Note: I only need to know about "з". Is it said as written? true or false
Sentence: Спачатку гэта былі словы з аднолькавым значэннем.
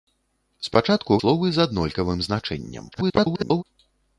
true